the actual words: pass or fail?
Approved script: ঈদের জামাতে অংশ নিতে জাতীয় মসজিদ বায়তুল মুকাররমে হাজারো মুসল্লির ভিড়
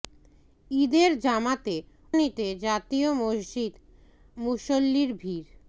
fail